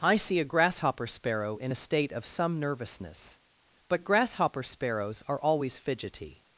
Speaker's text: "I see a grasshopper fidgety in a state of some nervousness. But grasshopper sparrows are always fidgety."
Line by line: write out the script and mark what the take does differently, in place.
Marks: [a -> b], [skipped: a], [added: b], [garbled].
"I see a grasshopper [fidgety -> sparrow] in a state of some nervousness. But grasshopper sparrows are always fidgety."